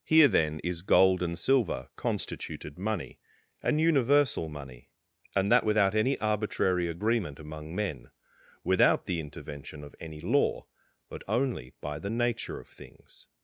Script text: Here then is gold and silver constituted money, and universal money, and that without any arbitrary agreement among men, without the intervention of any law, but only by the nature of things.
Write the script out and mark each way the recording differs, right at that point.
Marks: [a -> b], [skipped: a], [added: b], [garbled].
Here then is gold and silver constituted money, and universal money, and that without any arbitrary agreement among men, without the intervention of any law, but only by the nature of things.